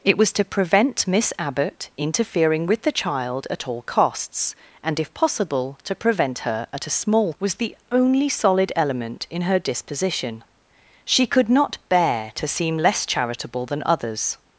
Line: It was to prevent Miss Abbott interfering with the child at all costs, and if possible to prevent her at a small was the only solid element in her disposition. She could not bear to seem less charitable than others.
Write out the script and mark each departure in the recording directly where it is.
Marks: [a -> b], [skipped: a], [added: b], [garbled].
It was to prevent Miss Abbott interfering with the child at all costs, and if possible to prevent her at a small was the only solid element in her disposition. She could not bear to seem less charitable than others.